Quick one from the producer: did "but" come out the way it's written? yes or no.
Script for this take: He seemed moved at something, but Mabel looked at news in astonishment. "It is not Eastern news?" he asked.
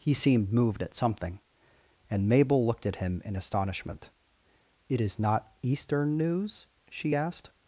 no